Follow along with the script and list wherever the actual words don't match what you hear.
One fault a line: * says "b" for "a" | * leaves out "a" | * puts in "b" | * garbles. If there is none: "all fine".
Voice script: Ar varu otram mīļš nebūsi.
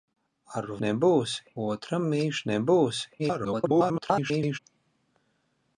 * says "nebūsi" for "varu"
* garbles